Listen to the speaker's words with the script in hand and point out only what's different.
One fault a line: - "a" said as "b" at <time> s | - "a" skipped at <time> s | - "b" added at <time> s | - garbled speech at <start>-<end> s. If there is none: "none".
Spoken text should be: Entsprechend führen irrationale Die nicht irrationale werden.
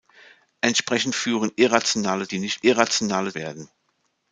none